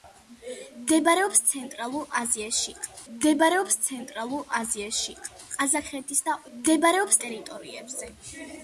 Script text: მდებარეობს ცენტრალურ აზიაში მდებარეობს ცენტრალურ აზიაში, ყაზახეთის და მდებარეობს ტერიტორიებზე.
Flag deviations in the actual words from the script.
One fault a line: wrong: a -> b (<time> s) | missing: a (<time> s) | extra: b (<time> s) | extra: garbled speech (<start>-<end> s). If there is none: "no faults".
no faults